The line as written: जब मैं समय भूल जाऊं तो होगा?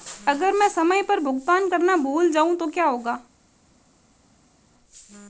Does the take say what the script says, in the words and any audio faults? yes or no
no